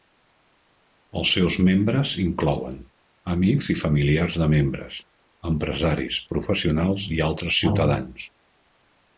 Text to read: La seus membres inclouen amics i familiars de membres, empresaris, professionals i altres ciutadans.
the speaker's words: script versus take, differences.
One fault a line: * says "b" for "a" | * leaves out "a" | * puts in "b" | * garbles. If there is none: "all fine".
* says "Els" for "La"